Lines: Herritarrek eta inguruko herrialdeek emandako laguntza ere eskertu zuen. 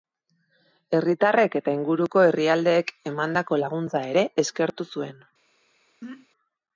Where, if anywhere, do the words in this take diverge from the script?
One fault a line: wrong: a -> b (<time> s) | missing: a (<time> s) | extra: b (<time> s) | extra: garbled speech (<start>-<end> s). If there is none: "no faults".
no faults